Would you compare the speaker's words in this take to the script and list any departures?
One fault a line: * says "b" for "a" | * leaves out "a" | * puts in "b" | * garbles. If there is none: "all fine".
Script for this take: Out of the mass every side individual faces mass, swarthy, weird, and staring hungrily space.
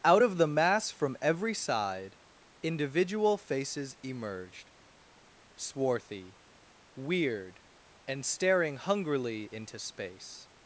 * puts in "from"
* says "emerged" for "mass"
* puts in "into"